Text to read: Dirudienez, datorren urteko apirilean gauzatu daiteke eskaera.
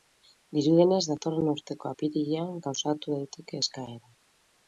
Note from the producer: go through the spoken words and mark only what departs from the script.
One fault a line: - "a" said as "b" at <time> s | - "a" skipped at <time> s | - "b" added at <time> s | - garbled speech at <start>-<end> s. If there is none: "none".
none